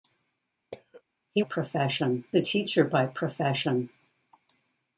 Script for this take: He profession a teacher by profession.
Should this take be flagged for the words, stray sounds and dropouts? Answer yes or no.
yes